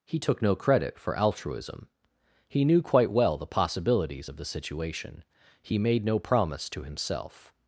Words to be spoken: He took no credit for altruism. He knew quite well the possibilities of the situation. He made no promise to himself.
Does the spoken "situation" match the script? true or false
true